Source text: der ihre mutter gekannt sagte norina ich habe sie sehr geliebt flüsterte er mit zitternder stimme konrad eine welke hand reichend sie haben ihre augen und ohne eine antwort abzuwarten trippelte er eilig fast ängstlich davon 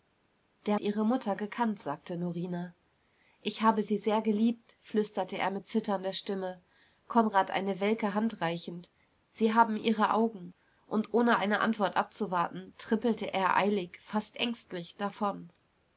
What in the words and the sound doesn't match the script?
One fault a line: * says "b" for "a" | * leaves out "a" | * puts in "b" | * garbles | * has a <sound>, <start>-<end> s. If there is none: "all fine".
all fine